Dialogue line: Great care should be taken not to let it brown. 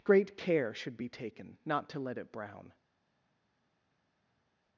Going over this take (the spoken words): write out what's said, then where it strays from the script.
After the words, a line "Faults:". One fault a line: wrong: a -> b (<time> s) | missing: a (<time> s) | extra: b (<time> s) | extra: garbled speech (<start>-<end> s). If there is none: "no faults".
Great care should be taken not to let it brown.
Faults:
no faults